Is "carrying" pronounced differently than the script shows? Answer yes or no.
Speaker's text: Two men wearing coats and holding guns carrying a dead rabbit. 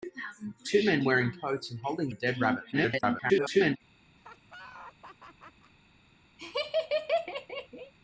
yes